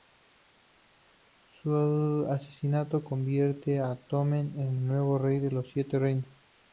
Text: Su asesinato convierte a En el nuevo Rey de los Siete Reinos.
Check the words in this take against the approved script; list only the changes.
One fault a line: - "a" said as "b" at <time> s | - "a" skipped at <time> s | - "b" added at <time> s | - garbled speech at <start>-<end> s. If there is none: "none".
- "Tommen" added at 4.0 s